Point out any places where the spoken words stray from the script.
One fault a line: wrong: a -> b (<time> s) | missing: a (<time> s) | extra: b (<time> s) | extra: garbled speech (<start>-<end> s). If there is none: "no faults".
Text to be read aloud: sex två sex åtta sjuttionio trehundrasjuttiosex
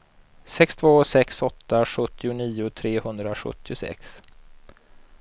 no faults